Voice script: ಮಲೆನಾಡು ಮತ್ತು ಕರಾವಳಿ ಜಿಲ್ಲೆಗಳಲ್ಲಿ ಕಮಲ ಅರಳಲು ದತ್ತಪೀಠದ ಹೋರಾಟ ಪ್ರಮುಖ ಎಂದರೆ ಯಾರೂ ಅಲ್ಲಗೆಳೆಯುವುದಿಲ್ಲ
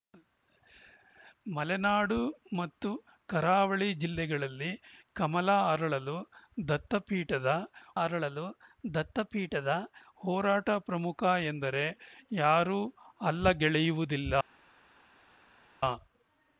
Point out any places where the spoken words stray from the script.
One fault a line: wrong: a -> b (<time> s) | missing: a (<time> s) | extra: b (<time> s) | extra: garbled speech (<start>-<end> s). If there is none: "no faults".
extra: ಅರಳಲು ದತ್ತಪೀಠದ (8.0 s)